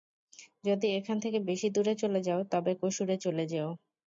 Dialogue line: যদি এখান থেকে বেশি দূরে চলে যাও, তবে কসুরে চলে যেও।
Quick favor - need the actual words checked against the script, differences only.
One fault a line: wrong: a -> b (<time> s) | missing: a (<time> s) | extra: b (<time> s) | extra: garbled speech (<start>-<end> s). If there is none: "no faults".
no faults